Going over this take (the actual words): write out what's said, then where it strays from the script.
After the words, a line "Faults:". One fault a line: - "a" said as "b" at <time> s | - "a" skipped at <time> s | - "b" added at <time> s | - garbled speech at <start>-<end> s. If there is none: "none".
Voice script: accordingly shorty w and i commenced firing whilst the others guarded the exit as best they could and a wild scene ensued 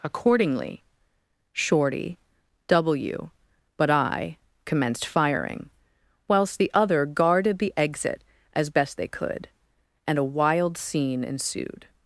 accordingly shorty w but i commenced firing whilst the other guarded the exit as best they could and a wild scene ensued
Faults:
- "and" said as "but" at 3.8 s
- "others" said as "other" at 6.7 s